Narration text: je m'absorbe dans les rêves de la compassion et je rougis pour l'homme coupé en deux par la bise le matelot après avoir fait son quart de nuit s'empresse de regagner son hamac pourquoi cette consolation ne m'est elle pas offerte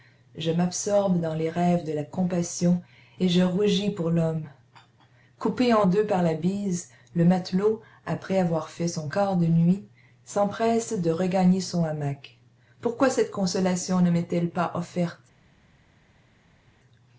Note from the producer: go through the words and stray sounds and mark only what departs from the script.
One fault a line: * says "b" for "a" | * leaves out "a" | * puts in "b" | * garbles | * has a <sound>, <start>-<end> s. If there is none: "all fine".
all fine